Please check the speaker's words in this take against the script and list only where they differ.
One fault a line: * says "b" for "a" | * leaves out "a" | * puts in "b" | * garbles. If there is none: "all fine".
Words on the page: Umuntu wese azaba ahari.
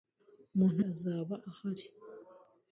* leaves out "wese"